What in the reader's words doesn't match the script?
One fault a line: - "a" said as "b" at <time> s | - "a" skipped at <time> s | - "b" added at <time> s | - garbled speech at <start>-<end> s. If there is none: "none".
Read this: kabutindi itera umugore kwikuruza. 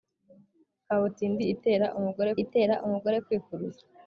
- "itera umugore" added at 2.4 s